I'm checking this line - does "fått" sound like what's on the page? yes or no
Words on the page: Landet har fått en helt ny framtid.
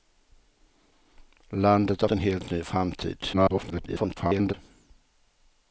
no